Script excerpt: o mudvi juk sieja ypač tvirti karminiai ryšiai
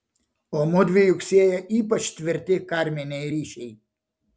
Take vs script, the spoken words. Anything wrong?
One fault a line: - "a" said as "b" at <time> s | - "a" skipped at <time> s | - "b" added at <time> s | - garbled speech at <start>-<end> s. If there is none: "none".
none